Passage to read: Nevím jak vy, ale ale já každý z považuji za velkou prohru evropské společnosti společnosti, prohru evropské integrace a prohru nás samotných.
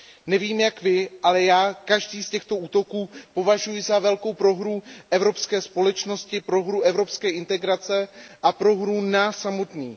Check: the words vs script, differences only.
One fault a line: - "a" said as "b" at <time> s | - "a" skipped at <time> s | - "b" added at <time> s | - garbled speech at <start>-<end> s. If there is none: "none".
- "ale" skipped at 1.4 s
- "těchto útoků" added at 2.3 s
- "společnosti" skipped at 6.4 s